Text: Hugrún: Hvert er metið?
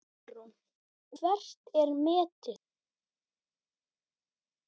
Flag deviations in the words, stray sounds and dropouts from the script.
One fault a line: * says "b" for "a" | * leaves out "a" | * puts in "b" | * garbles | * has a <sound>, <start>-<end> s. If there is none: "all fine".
all fine